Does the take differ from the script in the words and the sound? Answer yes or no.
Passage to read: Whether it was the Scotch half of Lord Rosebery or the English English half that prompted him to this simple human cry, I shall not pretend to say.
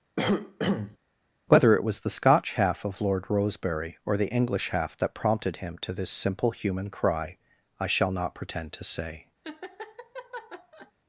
yes